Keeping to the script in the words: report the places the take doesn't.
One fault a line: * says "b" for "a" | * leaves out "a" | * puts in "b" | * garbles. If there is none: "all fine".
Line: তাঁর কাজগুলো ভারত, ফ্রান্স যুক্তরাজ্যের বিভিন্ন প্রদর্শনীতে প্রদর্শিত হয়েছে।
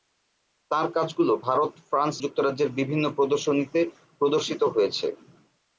all fine